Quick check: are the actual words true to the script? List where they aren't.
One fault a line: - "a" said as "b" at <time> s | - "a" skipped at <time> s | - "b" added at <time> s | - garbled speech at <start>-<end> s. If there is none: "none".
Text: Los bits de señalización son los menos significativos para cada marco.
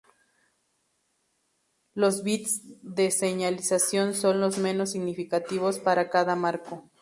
none